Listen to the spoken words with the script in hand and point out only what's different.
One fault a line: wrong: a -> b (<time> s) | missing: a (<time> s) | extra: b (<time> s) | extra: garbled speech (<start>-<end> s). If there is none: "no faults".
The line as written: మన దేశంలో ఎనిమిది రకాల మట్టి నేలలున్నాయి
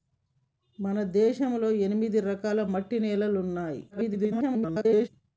extra: garbled speech (3.9-5.1 s)